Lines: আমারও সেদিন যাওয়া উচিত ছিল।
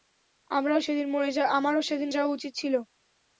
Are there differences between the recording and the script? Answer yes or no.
no